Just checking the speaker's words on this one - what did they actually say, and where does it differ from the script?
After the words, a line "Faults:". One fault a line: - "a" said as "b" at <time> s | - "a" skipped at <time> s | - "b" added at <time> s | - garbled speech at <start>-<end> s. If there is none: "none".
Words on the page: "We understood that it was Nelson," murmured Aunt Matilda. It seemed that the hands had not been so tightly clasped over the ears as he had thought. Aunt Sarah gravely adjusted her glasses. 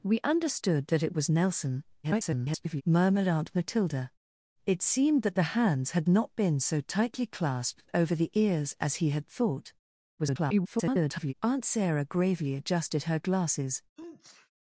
"We understood that it was Nelson," [garbled] murmured Aunt Matilda. It seemed that the hands had not been so tightly clasped over the ears as he had thought. [garbled] Aunt Sarah gravely adjusted her glasses.
Faults:
- garbled speech at 2.0-2.8 s
- garbled speech at 10.2-11.3 s